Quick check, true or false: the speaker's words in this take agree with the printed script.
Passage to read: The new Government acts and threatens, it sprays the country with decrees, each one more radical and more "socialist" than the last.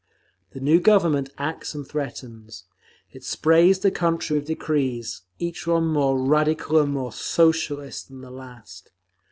true